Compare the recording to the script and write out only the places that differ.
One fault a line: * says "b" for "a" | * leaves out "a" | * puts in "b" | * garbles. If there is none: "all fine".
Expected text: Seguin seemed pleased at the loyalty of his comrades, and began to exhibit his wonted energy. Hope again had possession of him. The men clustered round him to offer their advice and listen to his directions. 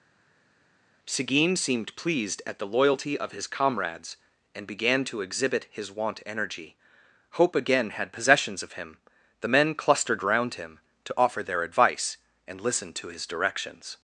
* says "wont" for "wonted"
* says "possessions" for "possession"